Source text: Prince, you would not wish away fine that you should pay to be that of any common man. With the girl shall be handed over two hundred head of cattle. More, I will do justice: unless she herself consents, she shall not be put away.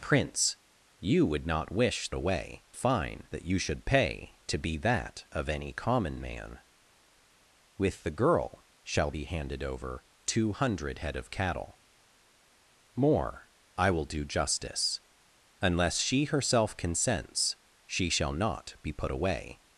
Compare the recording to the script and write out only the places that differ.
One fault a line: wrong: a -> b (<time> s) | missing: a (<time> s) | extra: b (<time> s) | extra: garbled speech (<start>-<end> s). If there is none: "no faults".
no faults